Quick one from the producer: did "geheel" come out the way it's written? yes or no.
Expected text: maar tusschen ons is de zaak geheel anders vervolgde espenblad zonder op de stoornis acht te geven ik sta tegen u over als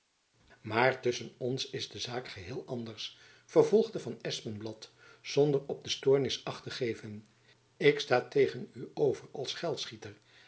yes